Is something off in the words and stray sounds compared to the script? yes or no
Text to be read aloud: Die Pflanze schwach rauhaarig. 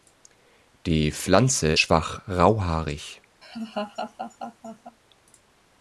yes